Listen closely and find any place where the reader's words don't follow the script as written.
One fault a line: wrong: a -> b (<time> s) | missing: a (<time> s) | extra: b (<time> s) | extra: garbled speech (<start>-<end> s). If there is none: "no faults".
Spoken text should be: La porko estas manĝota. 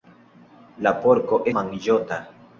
missing: estas (1.4 s)